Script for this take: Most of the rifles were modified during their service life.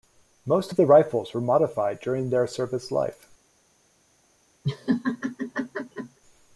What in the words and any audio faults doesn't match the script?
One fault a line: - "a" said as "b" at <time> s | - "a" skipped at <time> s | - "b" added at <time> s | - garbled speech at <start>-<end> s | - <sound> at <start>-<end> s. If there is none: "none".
- laugh at 4.6-6.2 s